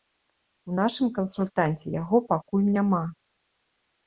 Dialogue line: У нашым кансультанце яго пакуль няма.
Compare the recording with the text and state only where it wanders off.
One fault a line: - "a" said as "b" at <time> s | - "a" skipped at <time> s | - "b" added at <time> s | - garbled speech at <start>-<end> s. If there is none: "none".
none